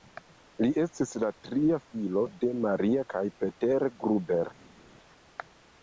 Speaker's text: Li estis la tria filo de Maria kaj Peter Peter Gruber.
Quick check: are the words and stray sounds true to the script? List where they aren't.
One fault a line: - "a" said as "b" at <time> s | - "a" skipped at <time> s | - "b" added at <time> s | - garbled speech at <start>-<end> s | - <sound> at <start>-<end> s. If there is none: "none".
- "Peter" skipped at 3.9 s